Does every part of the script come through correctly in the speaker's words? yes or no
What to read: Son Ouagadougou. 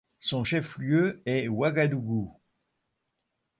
no